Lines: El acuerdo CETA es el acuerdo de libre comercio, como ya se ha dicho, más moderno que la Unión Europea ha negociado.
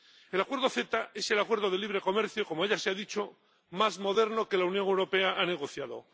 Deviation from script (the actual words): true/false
false